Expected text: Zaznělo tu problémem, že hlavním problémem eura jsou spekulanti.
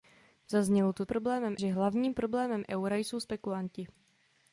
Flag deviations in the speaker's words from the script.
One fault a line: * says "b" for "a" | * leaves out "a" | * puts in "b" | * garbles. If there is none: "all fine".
all fine